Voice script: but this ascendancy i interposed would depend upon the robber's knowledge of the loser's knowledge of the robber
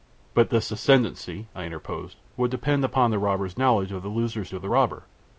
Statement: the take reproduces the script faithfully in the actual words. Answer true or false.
false